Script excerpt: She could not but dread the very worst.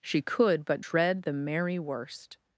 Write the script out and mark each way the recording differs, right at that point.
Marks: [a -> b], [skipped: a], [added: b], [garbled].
She could [skipped: not] but dread the [very -> merry] worst.